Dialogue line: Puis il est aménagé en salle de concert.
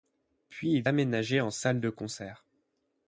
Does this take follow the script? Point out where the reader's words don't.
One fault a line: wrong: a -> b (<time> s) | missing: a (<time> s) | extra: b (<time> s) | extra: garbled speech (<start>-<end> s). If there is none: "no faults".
missing: est (0.9 s)